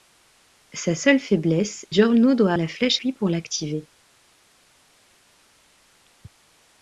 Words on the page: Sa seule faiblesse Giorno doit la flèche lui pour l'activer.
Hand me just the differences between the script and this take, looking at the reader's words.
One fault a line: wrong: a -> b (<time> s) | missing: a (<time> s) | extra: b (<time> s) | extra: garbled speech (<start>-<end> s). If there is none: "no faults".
no faults